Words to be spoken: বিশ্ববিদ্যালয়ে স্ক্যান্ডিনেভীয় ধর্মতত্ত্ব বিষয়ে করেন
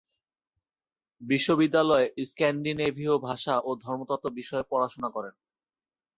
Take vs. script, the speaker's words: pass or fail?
fail